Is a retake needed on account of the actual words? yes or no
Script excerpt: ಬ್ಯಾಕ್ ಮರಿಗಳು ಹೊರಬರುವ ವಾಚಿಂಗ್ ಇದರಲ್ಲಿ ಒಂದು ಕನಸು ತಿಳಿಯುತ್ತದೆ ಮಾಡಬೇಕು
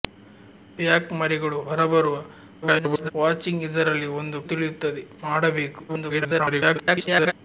yes